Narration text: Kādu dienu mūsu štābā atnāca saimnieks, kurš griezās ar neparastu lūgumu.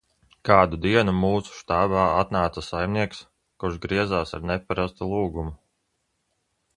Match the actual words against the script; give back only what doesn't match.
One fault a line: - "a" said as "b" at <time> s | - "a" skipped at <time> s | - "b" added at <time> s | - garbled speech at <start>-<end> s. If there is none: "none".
none